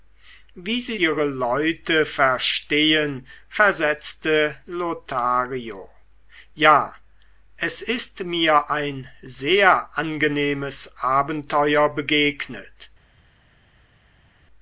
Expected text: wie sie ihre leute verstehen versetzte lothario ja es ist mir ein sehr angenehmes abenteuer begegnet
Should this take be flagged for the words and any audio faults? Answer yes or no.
no